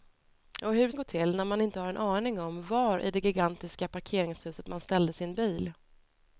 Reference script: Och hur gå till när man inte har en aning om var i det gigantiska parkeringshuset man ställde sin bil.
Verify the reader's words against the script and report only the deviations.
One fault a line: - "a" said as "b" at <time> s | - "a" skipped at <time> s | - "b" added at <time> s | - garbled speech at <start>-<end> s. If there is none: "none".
none